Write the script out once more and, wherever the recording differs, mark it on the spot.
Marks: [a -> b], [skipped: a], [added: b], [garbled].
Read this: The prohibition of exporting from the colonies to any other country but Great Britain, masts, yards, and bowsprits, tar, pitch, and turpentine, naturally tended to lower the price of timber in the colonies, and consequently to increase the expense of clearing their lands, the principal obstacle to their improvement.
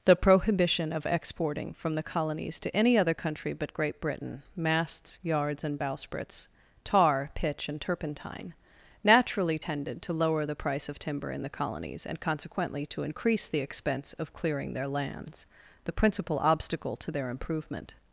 The prohibition of exporting from the colonies to any other country but Great Britain, masts, yards, and bowsprits, tar, pitch, and turpentine, naturally tended to lower the price of timber in the colonies, and consequently to increase the expense of clearing their lands, the principal obstacle to their improvement.